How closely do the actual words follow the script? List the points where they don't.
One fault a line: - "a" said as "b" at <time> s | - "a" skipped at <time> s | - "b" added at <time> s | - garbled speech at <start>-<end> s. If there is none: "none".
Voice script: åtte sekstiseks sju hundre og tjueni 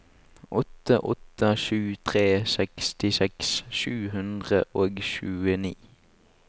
- "åtte sju tre" added at 1.0 s